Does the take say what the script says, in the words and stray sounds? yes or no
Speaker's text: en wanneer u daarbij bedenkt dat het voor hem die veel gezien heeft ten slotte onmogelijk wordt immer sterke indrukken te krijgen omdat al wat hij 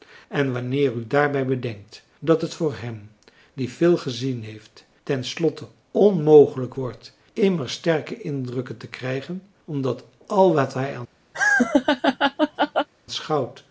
no